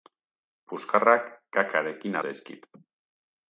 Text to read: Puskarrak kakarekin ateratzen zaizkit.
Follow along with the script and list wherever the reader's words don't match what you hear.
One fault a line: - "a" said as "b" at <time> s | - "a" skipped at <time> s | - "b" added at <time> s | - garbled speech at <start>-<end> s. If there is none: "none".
- "ateratzen" skipped at 2.2 s